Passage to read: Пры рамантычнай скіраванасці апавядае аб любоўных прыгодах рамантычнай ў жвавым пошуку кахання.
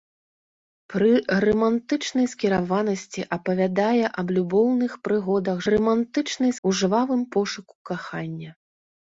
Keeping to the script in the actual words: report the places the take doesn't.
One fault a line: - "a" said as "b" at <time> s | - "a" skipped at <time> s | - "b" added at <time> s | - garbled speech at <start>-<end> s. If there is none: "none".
none